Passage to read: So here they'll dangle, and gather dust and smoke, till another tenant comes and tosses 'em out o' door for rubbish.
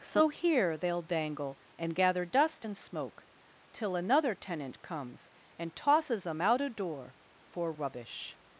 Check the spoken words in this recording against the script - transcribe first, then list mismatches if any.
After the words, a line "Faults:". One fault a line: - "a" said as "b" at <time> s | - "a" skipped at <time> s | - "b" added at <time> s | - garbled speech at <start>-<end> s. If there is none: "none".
So here they'll dangle, and gather dust and smoke, till another tenant comes and tosses 'em out o' door for rubbish.
Faults:
none